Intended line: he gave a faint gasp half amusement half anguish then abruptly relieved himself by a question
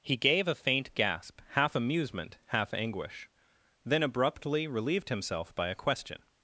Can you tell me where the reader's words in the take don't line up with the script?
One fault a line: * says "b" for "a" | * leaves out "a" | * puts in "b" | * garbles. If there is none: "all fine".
all fine